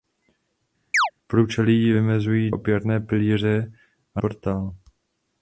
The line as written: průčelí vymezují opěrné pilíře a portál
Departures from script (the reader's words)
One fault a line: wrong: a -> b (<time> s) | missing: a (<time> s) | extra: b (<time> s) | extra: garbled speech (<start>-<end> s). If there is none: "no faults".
no faults